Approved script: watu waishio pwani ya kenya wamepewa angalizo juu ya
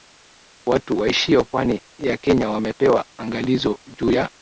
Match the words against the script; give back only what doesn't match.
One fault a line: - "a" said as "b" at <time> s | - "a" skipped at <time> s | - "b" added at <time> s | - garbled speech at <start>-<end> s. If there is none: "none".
none